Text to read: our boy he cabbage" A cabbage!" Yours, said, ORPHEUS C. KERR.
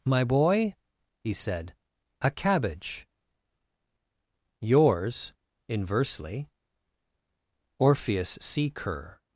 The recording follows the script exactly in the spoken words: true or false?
false